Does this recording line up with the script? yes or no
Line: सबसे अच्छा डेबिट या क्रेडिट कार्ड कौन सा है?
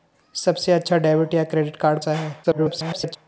no